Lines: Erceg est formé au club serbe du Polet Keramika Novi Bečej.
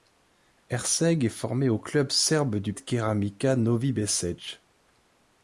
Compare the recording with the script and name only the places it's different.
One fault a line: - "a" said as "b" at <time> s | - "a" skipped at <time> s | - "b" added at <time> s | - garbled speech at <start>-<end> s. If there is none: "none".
- "Polet" skipped at 2.7 s